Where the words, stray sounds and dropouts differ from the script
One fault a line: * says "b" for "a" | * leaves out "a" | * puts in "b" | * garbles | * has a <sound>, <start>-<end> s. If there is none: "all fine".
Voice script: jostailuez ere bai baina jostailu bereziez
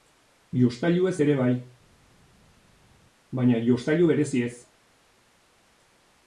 all fine